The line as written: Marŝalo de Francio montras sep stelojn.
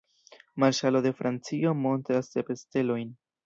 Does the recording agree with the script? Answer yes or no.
yes